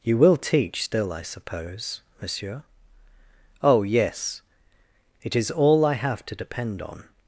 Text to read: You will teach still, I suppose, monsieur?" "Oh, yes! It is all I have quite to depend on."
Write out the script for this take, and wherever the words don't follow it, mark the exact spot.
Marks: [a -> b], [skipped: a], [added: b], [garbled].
You will teach still, I suppose, monsieur?" "Oh, yes! It is all I have [skipped: quite] to depend on."